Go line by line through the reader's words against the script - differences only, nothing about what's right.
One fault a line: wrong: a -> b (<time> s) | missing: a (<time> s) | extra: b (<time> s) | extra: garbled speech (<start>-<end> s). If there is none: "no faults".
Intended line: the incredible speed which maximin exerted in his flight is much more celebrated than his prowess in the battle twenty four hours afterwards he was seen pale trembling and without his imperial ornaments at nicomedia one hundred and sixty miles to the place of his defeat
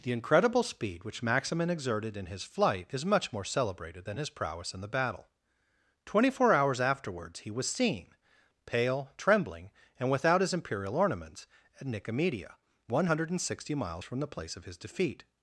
wrong: to -> from (14.0 s)